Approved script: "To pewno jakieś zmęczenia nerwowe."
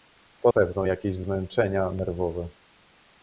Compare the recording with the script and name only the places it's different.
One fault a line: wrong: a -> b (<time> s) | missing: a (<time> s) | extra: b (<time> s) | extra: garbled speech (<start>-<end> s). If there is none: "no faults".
no faults